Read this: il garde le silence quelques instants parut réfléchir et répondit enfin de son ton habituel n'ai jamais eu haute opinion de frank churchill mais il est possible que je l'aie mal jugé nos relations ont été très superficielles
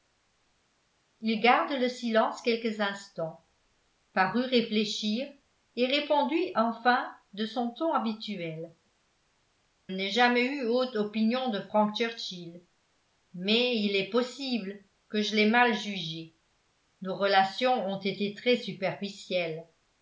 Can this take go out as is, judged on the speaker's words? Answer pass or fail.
pass